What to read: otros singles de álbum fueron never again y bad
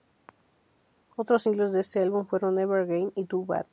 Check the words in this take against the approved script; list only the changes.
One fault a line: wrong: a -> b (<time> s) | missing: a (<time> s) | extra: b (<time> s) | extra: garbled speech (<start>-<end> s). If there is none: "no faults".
extra: este (1.8 s)
extra: too (3.2 s)